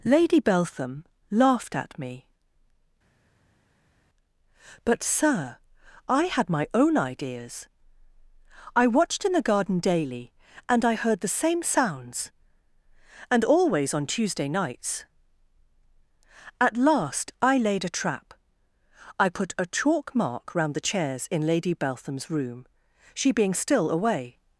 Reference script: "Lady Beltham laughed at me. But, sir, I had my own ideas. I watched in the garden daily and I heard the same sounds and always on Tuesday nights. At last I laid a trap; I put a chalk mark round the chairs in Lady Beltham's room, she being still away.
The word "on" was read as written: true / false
true